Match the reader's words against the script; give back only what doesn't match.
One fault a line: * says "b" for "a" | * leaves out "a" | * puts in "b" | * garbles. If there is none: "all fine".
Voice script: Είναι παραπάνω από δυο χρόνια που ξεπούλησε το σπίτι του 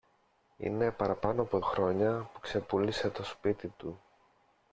* leaves out "δυο"